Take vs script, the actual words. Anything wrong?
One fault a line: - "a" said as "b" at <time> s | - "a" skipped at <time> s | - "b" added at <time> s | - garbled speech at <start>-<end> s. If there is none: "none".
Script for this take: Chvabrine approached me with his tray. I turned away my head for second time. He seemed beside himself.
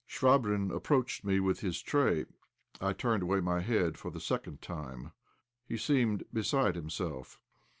- "the" added at 4.1 s